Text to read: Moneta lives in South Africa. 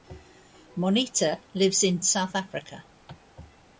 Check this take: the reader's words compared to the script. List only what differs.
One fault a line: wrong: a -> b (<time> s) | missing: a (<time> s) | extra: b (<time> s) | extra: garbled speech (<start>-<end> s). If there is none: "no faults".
no faults